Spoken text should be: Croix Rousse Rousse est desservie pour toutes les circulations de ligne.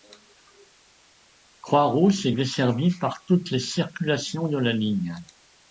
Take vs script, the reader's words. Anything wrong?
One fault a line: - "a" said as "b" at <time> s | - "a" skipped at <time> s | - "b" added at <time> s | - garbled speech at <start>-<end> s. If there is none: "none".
- "Rousse" skipped at 2.2 s
- "pour" said as "par" at 3.0 s
- "la" added at 4.6 s